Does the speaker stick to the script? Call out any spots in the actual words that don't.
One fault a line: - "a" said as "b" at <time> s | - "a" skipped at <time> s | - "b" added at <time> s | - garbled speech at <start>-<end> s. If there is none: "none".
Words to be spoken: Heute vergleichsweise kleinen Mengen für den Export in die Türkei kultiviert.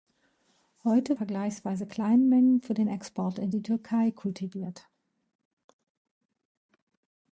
none